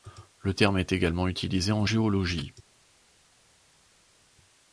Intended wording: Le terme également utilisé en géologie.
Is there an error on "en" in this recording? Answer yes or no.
no